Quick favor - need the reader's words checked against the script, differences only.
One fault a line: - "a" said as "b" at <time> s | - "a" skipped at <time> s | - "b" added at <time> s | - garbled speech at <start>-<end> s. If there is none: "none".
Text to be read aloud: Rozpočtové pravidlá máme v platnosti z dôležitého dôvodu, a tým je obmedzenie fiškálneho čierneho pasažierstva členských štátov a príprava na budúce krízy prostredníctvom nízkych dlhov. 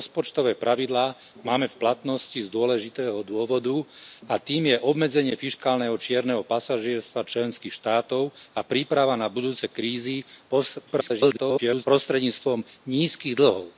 - garbled speech at 10.9-11.9 s